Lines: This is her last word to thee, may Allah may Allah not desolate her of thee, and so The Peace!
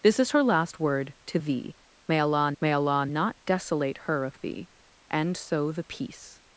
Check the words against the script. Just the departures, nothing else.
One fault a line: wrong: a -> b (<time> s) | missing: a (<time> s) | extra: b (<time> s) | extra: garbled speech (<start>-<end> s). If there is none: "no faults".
no faults